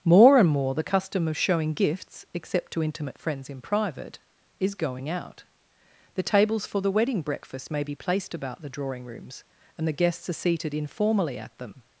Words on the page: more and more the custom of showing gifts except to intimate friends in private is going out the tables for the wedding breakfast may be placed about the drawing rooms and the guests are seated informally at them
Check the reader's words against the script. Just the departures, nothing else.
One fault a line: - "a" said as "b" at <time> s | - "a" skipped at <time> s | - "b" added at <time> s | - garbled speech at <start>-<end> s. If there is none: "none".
none